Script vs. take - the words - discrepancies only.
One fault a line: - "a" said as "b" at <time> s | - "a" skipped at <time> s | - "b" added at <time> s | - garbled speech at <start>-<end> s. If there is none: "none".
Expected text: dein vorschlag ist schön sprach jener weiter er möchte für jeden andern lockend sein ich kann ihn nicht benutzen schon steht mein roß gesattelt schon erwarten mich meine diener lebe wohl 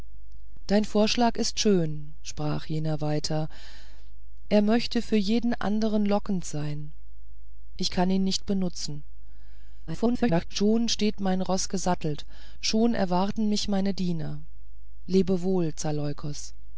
- garbled speech at 9.9-10.4 s